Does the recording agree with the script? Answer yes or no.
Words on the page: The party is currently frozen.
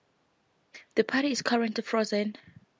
yes